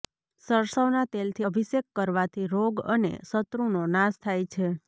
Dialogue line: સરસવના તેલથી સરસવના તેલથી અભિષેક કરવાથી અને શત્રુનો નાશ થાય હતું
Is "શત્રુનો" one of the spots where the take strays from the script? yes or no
no